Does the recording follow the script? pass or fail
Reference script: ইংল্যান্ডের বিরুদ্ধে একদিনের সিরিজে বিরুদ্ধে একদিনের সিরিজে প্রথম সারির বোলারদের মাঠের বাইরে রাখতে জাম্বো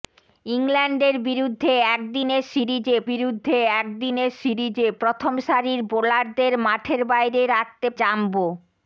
pass